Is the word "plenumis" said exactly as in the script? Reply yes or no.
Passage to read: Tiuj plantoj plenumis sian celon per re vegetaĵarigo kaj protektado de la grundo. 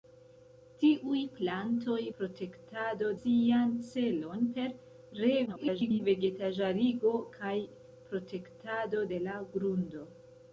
no